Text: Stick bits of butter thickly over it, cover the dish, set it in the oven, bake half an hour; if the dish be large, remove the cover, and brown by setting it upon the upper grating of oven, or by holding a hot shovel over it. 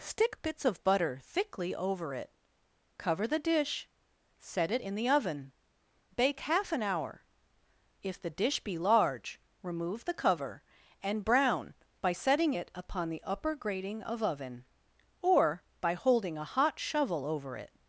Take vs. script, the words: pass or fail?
pass